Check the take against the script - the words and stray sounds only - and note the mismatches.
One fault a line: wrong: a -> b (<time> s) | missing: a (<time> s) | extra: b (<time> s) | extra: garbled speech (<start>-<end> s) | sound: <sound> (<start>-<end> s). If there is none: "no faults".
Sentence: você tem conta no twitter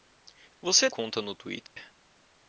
missing: tem (0.9 s)
sound: dropout (1.7-1.8 s)